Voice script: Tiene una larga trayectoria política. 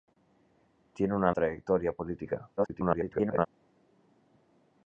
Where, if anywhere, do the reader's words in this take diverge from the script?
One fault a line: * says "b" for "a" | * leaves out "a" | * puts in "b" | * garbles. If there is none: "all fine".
* leaves out "larga"
* garbles